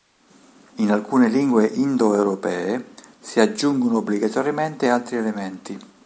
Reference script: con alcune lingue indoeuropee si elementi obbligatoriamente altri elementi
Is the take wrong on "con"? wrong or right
wrong